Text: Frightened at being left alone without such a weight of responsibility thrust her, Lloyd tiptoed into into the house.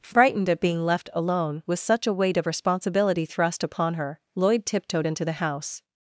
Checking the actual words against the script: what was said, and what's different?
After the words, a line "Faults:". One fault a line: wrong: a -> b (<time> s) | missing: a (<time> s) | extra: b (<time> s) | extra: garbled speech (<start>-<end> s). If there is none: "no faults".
Frightened at being left alone with such a weight of responsibility thrust upon her, Lloyd tiptoed into the house.
Faults:
wrong: without -> with (1.6 s)
extra: upon (3.6 s)
missing: into (5.3 s)